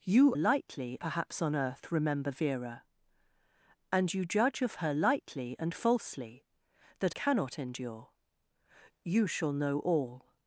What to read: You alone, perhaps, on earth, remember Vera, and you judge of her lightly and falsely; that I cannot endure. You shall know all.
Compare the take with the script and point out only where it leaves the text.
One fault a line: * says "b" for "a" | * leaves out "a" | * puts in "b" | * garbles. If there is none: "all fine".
* says "lightly" for "alone"
* leaves out "I"